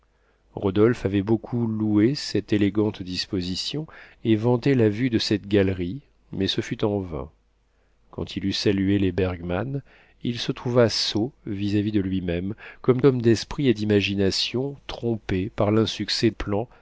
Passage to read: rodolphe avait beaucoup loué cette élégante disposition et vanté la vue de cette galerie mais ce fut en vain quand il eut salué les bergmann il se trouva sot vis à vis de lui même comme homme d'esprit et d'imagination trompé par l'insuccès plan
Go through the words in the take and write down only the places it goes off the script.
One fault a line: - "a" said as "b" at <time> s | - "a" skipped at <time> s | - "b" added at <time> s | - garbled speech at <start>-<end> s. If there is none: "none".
none